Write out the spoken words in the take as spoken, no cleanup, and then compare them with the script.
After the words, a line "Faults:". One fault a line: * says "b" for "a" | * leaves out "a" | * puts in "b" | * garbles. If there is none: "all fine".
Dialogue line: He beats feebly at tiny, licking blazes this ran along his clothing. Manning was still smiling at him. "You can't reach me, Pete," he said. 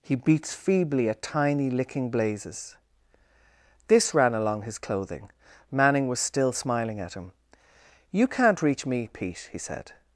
He beats feebly at tiny, licking blazes this ran along his clothing. Manning was still smiling at him. "You can't reach me, Pete," he said.
Faults:
all fine